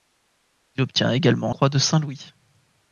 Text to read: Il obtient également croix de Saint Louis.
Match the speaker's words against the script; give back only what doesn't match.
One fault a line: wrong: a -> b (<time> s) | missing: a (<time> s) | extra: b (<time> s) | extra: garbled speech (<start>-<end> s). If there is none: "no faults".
no faults